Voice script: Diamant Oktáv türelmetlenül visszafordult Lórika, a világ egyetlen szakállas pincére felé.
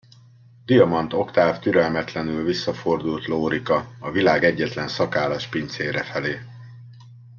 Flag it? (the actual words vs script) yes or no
no